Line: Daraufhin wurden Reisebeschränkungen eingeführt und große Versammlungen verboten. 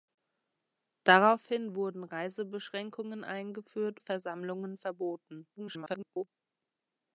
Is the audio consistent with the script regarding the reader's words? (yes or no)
no